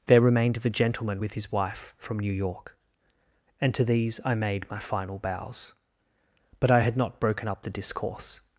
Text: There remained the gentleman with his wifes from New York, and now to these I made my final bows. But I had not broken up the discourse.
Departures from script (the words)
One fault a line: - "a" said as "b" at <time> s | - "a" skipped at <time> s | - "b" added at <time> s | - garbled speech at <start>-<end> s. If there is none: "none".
- "wifes" said as "wife" at 1.5 s
- "now" skipped at 3.7 s